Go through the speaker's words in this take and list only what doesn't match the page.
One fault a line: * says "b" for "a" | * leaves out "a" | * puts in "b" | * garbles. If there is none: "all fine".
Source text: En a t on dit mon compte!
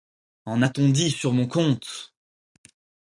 * puts in "sur"